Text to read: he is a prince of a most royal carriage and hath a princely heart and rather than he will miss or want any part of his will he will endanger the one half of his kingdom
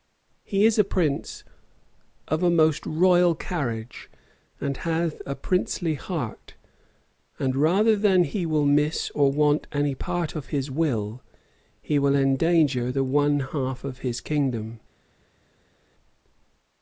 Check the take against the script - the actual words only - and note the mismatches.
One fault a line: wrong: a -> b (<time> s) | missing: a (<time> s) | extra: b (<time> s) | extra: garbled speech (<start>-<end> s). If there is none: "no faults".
no faults